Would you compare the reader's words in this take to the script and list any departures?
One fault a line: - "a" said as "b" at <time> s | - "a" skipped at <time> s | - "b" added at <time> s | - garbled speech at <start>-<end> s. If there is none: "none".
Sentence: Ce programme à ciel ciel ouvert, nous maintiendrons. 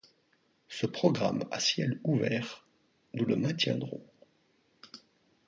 - "ciel" skipped at 2.0 s
- "le" added at 3.2 s